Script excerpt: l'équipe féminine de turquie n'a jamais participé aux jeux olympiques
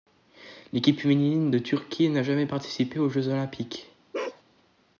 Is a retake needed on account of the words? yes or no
no